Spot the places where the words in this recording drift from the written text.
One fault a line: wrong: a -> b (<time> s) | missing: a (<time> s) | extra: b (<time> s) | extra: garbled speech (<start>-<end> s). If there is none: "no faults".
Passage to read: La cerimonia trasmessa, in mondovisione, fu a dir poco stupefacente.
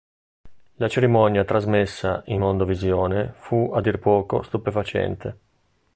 no faults